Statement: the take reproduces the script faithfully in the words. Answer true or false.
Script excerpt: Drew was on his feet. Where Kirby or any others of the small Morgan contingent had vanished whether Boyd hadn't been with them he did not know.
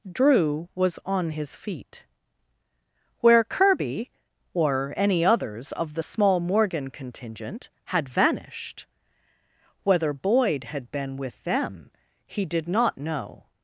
false